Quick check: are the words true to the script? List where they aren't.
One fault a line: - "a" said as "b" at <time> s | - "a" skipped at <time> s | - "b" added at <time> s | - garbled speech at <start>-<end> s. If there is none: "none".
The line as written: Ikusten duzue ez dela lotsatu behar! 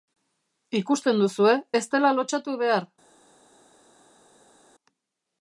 none